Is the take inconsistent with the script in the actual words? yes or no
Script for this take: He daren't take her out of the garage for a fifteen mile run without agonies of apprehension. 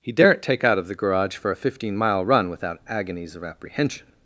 yes